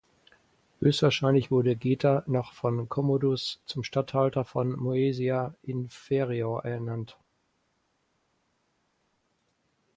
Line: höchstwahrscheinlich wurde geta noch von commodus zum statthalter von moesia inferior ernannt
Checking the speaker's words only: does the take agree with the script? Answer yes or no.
yes